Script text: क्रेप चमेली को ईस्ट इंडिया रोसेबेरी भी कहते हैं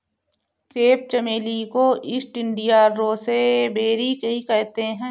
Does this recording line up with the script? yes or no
yes